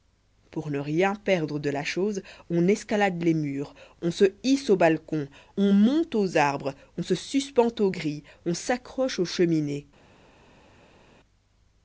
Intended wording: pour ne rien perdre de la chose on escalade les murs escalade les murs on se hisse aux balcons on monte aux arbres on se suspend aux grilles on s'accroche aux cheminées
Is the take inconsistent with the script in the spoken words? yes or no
yes